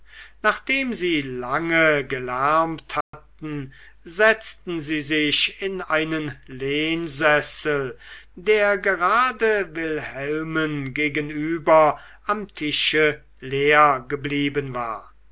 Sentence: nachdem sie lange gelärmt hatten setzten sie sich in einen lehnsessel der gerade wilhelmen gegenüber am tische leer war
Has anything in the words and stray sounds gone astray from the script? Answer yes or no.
yes